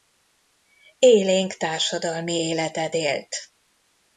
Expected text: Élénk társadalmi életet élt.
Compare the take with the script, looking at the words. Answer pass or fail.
pass